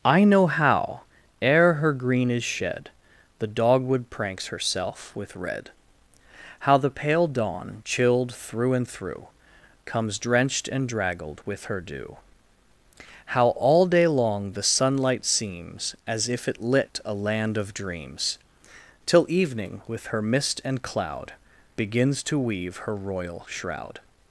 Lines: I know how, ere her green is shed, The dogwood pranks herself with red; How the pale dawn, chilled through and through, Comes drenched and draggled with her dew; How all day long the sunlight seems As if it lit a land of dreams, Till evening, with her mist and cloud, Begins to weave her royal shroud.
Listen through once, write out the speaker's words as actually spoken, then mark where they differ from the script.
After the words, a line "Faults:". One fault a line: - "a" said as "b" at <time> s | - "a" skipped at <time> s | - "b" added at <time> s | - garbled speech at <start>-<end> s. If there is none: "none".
I know how, ere her green is shed, The dogwood pranks herself with red; How the pale dawn, chilled through and through, Comes drenched and draggled with her dew; How all day long the sunlight seems As if it lit a land of dreams, Till evening, with her mist and cloud, Begins to weave her royal shroud.
Faults:
none